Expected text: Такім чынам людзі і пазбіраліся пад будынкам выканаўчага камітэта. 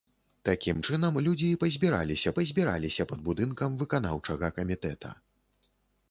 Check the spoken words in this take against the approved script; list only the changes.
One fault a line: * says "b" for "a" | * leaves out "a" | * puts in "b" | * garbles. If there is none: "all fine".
* puts in "пазбіраліся"